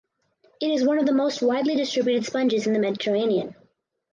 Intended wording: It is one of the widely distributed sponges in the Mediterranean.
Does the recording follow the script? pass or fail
fail